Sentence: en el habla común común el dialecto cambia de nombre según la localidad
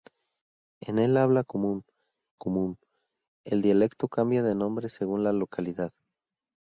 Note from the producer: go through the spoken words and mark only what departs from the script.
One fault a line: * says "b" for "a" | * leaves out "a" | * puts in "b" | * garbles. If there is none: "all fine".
all fine